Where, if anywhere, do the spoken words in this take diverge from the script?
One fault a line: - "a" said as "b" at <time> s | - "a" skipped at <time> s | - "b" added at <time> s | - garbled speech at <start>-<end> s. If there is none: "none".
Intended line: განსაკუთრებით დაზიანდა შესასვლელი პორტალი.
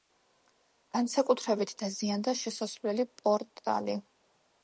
none